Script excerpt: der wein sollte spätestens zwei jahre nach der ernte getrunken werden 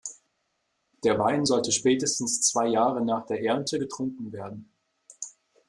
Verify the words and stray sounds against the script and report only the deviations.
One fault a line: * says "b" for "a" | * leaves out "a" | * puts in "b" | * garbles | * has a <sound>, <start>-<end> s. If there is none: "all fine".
all fine